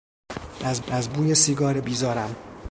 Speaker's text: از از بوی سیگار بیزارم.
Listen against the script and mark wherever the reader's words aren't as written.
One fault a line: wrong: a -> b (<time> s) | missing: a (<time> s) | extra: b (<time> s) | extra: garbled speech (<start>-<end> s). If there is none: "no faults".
no faults